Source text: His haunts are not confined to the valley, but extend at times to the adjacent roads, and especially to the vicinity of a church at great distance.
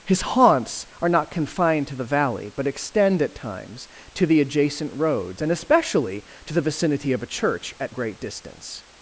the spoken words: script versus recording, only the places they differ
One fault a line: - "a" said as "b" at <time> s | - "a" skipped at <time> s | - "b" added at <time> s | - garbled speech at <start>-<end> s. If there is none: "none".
none